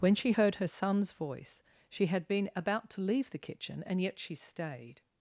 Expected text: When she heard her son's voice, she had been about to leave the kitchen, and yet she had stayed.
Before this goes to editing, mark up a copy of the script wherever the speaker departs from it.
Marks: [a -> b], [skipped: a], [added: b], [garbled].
When she heard her son's voice, she had been about to leave the kitchen, and yet she [skipped: had] stayed.